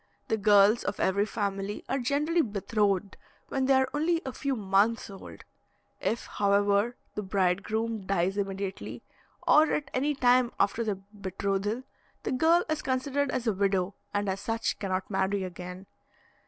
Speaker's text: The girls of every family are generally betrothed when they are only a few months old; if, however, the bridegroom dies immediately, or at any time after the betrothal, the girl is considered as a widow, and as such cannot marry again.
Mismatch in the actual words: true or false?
false